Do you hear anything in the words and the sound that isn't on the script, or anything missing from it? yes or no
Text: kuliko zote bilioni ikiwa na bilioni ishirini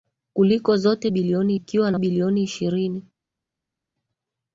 no